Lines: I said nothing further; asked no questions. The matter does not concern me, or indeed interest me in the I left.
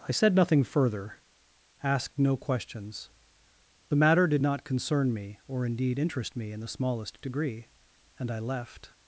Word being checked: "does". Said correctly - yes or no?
no